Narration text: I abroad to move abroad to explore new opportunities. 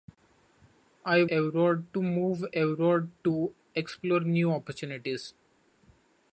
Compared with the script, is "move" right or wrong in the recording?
right